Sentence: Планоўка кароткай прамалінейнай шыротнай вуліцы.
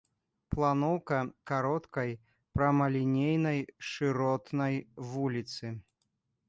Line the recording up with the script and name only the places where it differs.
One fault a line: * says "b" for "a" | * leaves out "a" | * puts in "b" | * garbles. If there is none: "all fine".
all fine